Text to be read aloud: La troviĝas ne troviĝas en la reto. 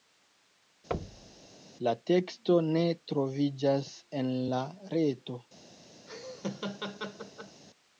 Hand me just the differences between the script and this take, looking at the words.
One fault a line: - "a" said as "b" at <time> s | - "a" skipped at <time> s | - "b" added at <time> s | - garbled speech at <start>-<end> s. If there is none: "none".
- "troviĝas" said as "teksto" at 2.1 s